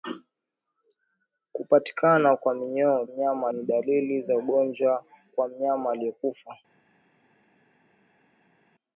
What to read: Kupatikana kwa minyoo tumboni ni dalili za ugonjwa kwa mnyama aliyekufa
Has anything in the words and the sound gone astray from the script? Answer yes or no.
yes